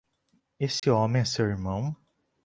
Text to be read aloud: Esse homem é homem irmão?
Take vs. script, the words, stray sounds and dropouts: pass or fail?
fail